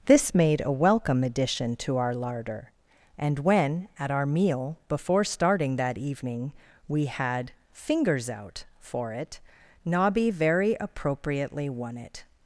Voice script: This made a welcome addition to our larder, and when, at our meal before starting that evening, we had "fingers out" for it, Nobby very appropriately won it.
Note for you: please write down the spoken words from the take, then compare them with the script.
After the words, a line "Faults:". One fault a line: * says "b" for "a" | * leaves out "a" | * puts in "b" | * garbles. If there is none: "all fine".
This made a welcome addition to our larder, and when, at our meal before starting that evening, we had "fingers out" for it, Nobby very appropriately won it.
Faults:
all fine